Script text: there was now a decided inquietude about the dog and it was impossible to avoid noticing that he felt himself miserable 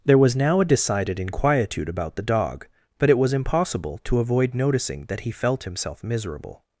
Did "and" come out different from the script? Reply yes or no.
yes